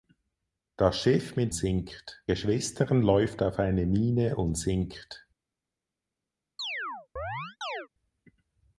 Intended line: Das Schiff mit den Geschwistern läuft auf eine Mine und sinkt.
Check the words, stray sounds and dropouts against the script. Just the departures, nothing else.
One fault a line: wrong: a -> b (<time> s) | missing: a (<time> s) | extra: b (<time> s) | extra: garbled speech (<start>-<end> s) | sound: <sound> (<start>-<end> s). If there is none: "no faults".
wrong: den -> sinkt (1.5 s)
sound: chirp (6.6-7.9 s)